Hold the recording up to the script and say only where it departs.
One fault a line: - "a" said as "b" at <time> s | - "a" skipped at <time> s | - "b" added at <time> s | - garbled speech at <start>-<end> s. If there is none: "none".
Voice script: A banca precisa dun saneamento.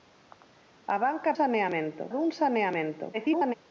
- "precisa" said as "saneamento" at 1.4 s
- garbled speech at 3.1-3.5 s